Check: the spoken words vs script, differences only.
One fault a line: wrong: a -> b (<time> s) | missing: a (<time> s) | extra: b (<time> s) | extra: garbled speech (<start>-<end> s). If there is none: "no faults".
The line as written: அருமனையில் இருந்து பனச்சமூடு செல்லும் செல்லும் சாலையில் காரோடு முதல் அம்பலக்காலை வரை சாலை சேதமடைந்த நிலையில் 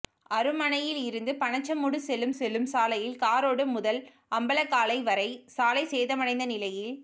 no faults